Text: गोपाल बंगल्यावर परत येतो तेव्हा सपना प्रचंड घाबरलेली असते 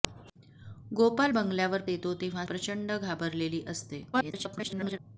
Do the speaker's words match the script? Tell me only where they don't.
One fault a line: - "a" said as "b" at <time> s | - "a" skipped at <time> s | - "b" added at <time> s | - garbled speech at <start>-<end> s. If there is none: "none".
- "परत" skipped at 1.8 s
- "सपना" skipped at 2.5 s
- garbled speech at 4.1-5.0 s